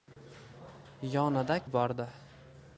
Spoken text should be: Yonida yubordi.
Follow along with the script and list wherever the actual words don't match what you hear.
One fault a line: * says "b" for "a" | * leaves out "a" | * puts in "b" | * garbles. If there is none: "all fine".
all fine